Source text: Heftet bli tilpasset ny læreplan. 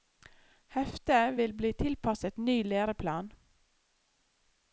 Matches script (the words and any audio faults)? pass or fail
fail